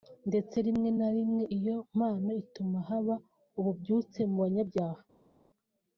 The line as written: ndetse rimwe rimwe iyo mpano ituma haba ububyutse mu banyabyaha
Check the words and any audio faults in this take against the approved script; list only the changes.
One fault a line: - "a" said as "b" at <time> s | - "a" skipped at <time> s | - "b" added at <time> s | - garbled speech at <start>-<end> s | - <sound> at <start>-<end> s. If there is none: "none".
- "na" added at 1.0 s